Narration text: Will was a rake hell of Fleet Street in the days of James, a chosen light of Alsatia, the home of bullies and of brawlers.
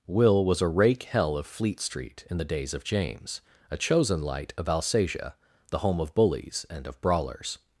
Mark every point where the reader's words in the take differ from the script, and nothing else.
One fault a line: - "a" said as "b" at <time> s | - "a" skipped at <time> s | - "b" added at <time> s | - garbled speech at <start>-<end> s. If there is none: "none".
none